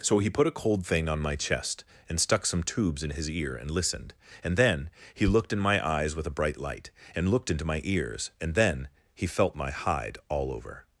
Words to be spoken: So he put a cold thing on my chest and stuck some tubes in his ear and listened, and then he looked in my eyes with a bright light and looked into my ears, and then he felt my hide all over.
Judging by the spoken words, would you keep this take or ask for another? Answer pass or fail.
pass